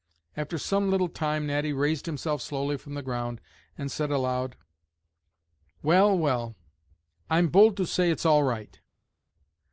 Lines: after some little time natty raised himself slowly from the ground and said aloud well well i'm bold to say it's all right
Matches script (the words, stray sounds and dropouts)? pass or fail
pass